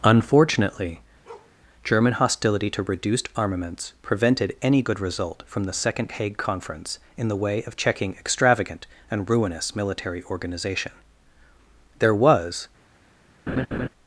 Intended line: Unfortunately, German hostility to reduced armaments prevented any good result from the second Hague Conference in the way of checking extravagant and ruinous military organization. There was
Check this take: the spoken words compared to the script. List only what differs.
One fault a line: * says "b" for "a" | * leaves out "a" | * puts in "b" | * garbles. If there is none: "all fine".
all fine